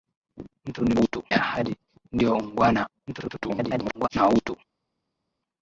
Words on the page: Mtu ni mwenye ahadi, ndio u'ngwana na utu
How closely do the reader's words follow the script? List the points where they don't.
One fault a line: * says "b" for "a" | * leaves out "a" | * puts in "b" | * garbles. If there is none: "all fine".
* says "utu" for "mwenye"
* garbles